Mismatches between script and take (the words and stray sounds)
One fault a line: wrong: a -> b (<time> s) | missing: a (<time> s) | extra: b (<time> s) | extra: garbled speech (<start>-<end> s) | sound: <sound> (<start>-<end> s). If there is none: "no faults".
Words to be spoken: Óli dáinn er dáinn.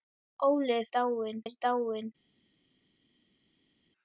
no faults